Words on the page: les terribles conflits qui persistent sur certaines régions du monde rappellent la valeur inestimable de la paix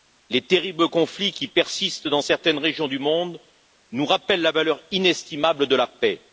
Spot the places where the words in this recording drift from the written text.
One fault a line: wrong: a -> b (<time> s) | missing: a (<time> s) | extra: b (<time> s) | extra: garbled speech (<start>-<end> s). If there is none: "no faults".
wrong: sur -> dans (2.1 s)
extra: nous (3.9 s)